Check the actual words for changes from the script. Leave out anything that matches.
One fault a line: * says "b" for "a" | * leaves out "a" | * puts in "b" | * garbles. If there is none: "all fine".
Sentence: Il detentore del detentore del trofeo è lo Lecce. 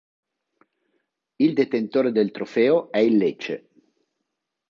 * leaves out "detentore del"
* says "il" for "lo"